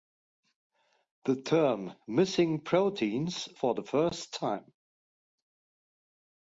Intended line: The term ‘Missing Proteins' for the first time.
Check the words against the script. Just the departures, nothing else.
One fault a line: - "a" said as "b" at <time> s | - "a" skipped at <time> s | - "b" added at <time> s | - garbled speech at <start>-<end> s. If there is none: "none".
none